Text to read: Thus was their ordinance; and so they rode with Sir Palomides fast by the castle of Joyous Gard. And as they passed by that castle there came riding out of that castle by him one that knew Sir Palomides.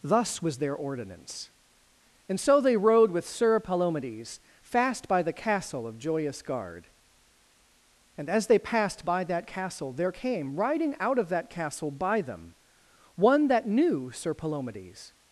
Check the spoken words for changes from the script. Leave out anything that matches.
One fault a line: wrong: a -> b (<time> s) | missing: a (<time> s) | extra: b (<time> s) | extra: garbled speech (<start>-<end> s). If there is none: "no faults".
wrong: him -> them (12.2 s)